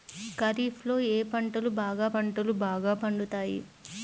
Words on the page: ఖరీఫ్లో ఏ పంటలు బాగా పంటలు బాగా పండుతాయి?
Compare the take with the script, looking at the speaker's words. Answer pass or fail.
pass